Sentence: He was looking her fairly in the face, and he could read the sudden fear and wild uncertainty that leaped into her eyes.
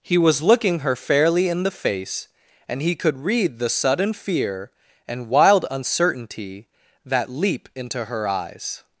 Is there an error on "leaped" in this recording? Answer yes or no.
yes